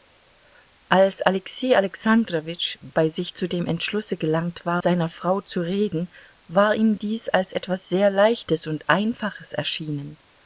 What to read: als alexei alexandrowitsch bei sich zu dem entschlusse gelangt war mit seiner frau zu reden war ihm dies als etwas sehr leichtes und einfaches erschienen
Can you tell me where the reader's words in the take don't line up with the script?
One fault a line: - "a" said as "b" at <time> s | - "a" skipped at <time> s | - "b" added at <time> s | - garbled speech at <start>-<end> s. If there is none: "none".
- "mit" skipped at 4.8 s